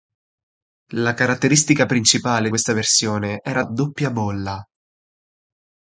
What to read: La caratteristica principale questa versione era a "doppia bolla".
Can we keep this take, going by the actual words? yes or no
yes